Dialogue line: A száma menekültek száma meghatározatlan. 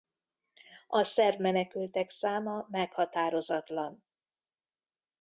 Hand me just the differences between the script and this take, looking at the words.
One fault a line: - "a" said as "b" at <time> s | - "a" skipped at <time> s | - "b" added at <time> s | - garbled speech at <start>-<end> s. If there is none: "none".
- "száma" said as "szerb" at 1.0 s